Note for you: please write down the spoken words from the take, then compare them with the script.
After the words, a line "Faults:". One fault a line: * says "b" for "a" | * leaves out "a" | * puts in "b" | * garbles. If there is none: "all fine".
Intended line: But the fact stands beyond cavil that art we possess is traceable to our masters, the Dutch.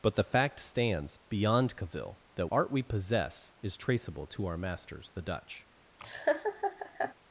But the fact stands beyond cavil that art we possess is traceable to our masters, the Dutch.
Faults:
all fine